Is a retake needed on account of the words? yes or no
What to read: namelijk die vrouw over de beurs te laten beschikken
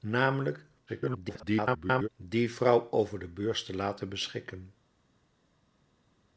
yes